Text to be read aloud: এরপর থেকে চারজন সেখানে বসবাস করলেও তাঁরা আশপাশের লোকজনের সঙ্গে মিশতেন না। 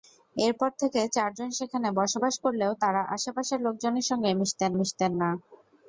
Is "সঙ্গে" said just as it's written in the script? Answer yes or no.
yes